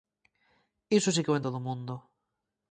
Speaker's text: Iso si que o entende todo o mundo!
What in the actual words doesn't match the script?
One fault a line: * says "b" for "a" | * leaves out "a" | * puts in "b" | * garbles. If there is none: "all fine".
* leaves out "entende"